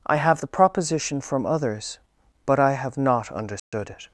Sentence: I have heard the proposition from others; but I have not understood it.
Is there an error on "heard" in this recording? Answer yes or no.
yes